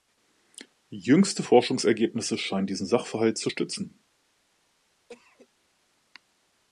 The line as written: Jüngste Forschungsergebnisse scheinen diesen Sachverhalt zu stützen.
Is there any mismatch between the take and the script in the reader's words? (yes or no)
no